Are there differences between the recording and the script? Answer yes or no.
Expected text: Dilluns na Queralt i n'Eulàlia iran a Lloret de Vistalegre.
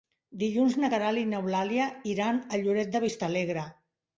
no